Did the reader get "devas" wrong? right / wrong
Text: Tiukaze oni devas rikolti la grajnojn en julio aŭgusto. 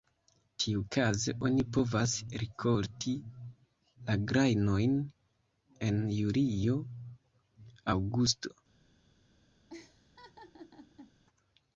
wrong